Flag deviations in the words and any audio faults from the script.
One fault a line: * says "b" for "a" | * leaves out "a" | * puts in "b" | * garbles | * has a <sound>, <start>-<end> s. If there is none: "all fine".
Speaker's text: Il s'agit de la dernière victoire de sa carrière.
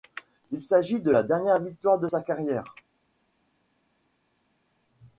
all fine